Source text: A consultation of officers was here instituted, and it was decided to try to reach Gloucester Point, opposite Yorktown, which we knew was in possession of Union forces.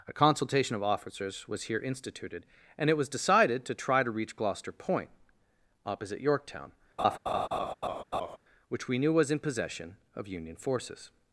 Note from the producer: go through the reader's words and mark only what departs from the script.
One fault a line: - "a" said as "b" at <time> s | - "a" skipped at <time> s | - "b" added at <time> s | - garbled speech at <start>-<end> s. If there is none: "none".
none